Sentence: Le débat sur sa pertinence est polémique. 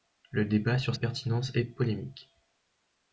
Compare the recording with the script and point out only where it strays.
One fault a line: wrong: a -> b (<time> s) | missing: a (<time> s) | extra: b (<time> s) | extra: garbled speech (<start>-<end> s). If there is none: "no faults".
missing: sa (0.9 s)